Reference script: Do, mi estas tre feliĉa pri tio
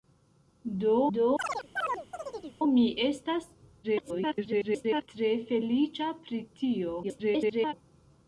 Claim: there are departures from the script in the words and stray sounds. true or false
true